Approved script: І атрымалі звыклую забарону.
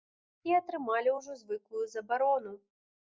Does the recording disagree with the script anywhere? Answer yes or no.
yes